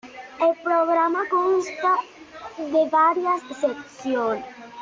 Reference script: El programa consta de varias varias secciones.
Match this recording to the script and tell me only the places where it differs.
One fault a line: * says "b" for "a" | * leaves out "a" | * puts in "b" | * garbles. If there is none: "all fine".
* leaves out "varias"